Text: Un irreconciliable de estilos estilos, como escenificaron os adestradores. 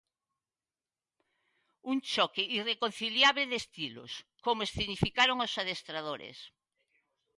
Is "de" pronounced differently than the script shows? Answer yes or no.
no